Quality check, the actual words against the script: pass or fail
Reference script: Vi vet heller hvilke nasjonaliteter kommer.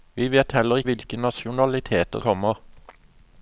pass